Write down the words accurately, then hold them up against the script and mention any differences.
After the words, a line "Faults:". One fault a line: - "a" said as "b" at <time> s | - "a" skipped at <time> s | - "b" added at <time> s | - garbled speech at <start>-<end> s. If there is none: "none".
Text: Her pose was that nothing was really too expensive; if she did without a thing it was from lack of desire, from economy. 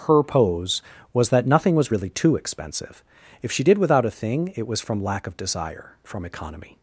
Her pose was that nothing was really too expensive; if she did without a thing it was from lack of desire, from economy.
Faults:
none